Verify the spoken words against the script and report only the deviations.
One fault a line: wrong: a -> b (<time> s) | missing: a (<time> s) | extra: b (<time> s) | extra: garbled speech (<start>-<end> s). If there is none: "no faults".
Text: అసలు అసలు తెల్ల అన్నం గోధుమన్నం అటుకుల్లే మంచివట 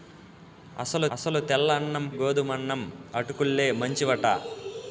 no faults